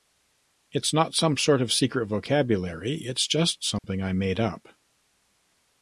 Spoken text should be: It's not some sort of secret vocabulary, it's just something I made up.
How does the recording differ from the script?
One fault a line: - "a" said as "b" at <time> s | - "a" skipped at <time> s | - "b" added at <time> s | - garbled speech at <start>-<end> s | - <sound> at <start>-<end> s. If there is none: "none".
- dropout at 3.8-3.8 s